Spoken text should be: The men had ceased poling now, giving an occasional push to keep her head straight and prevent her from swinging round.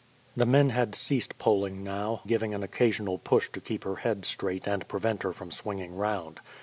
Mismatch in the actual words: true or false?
false